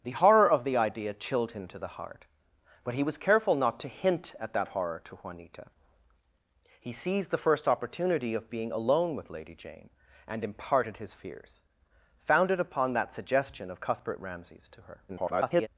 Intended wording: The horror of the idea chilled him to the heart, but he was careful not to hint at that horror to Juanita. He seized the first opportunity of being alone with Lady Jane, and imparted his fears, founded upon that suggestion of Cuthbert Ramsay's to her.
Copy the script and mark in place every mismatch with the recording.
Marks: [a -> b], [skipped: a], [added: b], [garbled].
The horror of the idea chilled him to the heart, but he was careful not to hint at that horror to Juanita. He seized the first opportunity of being alone with Lady Jane, and imparted his fears, founded upon that suggestion of Cuthbert Ramsay's to her. [garbled]